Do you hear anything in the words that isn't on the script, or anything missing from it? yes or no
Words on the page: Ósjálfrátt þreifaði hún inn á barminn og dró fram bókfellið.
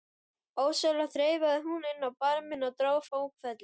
yes